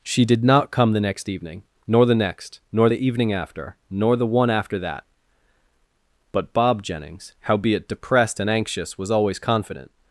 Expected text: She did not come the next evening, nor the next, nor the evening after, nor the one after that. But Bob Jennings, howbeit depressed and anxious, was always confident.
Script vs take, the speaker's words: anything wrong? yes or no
no